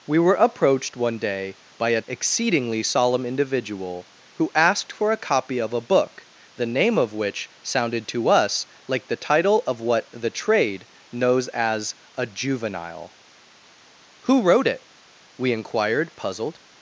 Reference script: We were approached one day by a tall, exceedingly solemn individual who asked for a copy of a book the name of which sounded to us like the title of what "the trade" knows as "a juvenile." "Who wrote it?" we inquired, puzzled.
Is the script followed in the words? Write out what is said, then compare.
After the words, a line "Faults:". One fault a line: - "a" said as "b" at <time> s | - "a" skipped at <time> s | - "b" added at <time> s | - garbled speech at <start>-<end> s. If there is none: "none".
We were approached one day by a exceedingly solemn individual who asked for a copy of a book the name of which sounded to us like the title of what "the trade" knows as "a juvenile." "Who wrote it?" we inquired, puzzled.
Faults:
- "tall" skipped at 2.0 s